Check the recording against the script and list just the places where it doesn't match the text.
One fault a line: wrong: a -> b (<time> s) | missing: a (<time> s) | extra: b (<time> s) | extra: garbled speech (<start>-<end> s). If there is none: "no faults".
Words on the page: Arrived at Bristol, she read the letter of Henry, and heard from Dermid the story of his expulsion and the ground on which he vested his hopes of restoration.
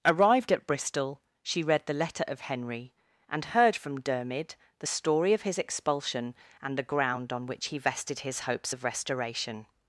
no faults